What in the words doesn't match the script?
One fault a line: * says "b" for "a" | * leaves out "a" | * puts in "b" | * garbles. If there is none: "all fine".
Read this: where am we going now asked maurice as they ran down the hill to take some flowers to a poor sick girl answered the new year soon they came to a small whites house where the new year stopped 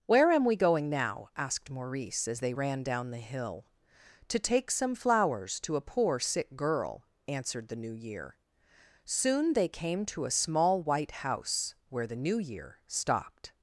* says "white" for "whites"